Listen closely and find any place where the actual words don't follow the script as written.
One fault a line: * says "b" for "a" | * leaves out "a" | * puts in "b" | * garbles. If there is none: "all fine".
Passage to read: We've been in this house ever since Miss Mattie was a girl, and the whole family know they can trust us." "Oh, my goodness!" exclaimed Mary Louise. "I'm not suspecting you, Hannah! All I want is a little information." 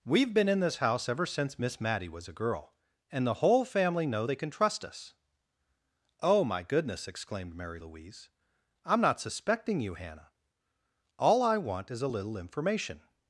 all fine